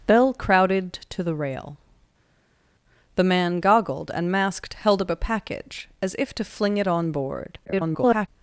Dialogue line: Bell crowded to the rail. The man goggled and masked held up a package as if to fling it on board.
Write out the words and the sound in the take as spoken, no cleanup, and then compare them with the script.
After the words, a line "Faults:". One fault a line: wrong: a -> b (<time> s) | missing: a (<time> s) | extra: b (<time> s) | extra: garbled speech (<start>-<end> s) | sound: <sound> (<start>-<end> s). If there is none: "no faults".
Bell crowded to the rail. The man goggled and masked held up a package as if to fling it on board. [garbled]
Faults:
extra: garbled speech (7.7-8.3 s)